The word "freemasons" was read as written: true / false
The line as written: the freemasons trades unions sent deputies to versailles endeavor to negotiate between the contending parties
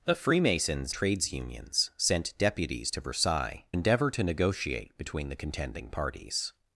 true